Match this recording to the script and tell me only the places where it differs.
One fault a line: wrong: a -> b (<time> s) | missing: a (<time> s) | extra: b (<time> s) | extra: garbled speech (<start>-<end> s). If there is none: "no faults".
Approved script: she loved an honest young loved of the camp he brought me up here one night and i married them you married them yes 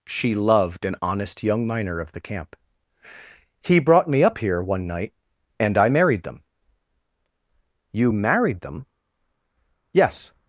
wrong: loved -> miner (1.7 s)